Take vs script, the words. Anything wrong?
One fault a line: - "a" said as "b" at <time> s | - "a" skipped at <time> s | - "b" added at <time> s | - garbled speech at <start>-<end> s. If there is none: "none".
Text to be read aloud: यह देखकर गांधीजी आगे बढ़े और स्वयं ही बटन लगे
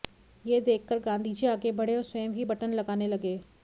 - "लगाने" added at 2.7 s